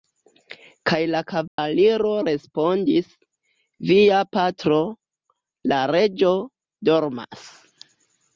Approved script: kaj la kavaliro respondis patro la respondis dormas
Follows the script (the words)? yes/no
no